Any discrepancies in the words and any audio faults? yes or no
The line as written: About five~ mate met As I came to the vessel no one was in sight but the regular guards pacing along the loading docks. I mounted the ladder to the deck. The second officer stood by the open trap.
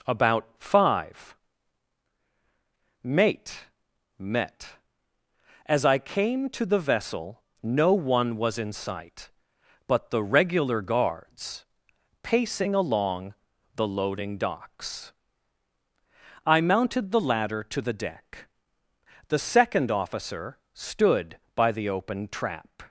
no